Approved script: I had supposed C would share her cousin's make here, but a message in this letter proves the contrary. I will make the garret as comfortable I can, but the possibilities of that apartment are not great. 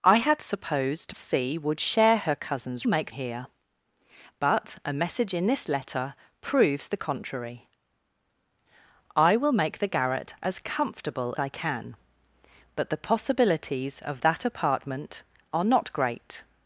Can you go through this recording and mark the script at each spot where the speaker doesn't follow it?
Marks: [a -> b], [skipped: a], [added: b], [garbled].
I had supposed C would share her cousin's make here, but a message in this letter proves the contrary. I will make the garret as comfortable I can, but the possibilities of that apartment are not great.